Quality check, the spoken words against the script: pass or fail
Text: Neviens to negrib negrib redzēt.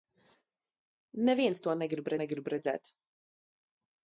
pass